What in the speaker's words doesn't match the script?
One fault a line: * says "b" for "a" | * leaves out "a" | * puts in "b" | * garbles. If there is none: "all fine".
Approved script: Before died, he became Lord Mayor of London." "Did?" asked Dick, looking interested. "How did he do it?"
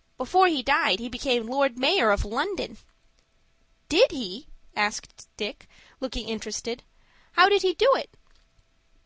* puts in "he"
* puts in "he"